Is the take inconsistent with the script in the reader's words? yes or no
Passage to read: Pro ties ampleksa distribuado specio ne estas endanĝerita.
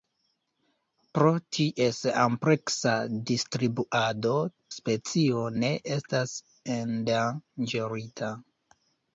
no